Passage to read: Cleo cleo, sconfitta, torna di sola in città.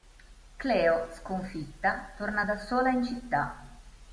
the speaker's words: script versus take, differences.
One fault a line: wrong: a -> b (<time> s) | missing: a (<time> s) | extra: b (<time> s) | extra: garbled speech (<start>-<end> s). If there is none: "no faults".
missing: cleo (1.1 s)
wrong: di -> da (2.4 s)